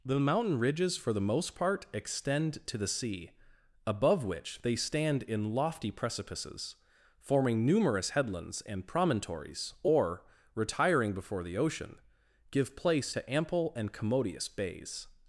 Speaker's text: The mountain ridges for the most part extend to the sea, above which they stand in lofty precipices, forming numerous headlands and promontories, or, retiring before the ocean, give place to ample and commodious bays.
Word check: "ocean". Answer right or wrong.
right